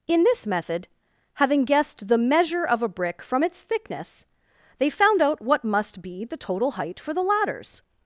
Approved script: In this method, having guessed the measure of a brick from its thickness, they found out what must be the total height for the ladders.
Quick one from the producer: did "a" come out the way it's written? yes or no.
yes